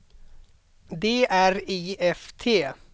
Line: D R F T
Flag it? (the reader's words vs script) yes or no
yes